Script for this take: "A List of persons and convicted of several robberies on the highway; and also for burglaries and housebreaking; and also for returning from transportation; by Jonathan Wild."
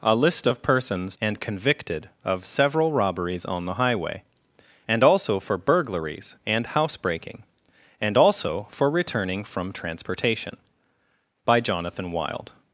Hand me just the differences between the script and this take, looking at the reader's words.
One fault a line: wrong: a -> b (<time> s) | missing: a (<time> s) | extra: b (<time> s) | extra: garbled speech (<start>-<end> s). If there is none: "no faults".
no faults